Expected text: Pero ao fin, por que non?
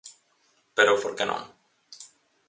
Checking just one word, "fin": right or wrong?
wrong